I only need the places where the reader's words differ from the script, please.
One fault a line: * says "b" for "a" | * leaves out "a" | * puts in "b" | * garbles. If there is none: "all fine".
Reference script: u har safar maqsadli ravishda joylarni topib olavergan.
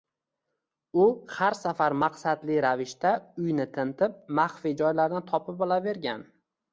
* puts in "uyni tintib maxfiy"